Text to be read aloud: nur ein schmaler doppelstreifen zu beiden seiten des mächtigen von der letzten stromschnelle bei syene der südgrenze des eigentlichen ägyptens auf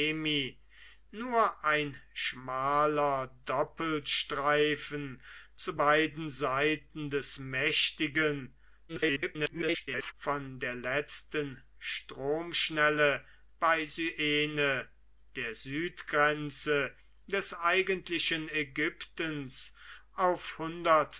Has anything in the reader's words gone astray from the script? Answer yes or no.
yes